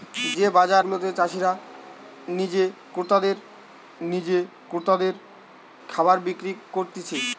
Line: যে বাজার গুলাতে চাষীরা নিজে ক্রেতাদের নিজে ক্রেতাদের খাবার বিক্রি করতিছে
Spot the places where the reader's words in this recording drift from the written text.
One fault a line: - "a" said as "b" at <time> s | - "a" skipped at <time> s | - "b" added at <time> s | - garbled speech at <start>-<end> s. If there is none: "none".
none